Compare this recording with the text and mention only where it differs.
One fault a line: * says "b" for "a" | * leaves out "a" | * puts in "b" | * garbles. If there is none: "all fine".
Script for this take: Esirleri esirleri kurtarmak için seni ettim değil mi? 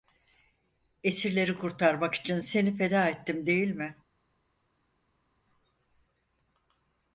* leaves out "esirleri"
* puts in "feda"